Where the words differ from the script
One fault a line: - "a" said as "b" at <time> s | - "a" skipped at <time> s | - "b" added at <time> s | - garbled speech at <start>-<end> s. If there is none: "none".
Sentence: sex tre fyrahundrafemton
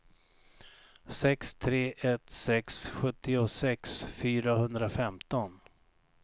- "ett sex sjuttiosex" added at 2.0 s